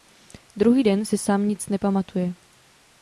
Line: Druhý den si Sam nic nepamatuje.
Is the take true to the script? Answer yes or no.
yes